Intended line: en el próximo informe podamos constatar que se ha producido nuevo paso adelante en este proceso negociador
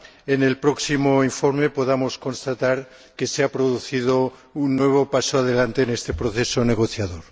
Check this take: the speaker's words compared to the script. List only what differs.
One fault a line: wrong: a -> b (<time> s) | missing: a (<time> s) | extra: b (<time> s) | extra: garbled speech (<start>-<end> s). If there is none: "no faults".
extra: un (4.5 s)